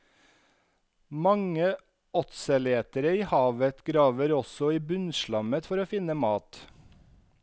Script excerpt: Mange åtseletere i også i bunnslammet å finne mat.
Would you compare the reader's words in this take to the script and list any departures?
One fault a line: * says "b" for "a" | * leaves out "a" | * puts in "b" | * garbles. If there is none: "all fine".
* puts in "havet graver"
* puts in "for"